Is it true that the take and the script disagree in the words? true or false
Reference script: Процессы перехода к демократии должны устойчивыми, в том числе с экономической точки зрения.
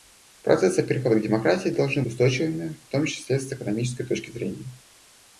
false